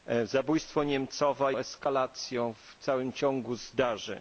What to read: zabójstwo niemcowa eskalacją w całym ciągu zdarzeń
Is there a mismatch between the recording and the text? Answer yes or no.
no